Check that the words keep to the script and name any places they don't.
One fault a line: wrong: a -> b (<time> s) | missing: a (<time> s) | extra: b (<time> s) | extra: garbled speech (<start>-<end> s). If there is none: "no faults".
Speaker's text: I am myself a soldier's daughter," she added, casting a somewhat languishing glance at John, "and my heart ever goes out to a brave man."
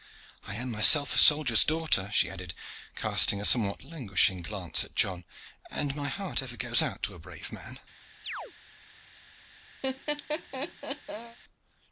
no faults